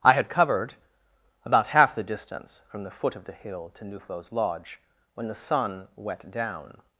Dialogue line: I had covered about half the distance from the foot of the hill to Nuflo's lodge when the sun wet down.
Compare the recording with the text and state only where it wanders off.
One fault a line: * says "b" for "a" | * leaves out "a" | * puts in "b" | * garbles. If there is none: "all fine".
all fine